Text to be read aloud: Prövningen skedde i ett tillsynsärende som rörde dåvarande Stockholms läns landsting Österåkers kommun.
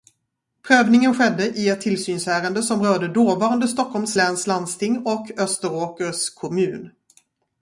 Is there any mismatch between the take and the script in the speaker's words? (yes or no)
yes